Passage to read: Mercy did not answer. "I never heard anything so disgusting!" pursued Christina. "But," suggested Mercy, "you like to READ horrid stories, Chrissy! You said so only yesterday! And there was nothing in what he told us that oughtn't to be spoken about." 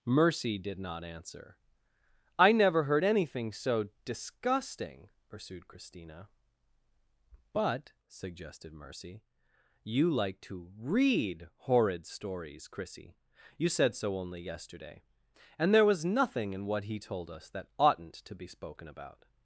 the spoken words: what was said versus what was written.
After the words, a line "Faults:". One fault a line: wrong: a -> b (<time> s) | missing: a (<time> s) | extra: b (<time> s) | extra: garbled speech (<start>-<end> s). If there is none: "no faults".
Mercy did not answer. "I never heard anything so disgusting!" pursued Christina. "But," suggested Mercy, "you like to READ horrid stories, Chrissy! You said so only yesterday! And there was nothing in what he told us that oughtn't to be spoken about."
Faults:
no faults